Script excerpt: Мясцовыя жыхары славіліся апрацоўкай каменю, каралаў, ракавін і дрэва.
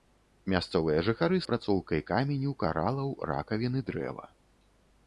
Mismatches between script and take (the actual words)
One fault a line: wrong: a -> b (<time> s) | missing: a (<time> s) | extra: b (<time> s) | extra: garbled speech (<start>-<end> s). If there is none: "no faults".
missing: славіліся (1.4 s)